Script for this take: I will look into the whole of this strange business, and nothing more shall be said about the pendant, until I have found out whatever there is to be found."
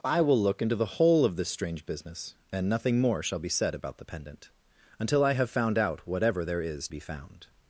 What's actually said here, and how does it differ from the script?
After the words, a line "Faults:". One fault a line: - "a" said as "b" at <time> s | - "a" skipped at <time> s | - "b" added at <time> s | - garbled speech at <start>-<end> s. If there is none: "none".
I will look into the whole of this strange business, and nothing more shall be said about the pendant, until I have found out whatever there is be found."
Faults:
- "to" skipped at 6.9 s